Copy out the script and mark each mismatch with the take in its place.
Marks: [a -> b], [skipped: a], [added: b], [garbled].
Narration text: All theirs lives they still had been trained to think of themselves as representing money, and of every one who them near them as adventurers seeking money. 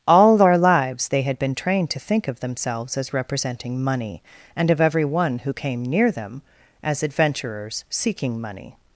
All [theirs -> their] lives they [skipped: still] had been trained to think of themselves as representing money, and of every one who [them -> came] near them as adventurers seeking money.